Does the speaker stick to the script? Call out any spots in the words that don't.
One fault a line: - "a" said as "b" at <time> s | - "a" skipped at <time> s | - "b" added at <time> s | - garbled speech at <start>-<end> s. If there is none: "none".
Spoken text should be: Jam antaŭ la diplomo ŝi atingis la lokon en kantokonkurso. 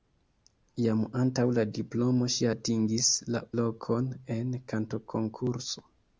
none